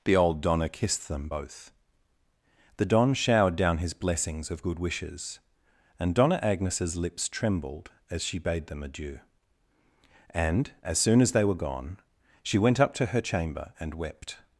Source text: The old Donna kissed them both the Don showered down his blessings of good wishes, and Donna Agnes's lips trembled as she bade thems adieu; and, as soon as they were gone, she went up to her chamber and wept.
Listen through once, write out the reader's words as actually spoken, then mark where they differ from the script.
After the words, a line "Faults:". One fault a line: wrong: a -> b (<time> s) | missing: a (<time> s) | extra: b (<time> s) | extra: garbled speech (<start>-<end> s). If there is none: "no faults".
The old Donna kissed them both the Don showered down his blessings of good wishes, and Donna Agnes's lips trembled as she bade them adieu; and, as soon as they were gone, she went up to her chamber and wept.
Faults:
wrong: thems -> them (8.7 s)